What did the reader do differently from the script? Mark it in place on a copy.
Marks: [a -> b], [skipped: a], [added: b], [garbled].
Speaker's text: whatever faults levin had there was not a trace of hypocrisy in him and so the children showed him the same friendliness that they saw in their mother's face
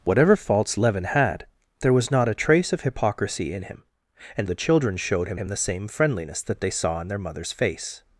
whatever faults levin had there was not a trace of hypocrisy in him and [skipped: so] the children showed him [added: him] the same friendliness that they saw in their mother's face